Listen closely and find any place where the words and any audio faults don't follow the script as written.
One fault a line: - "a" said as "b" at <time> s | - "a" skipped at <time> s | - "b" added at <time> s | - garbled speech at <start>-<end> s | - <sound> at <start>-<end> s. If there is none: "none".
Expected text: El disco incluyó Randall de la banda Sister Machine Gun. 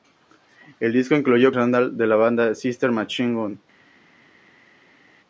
none